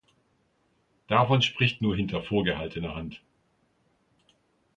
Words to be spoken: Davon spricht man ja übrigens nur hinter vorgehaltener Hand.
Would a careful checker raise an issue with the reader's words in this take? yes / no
yes